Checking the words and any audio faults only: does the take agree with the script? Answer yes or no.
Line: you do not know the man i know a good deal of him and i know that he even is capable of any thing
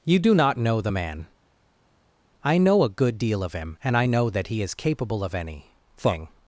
no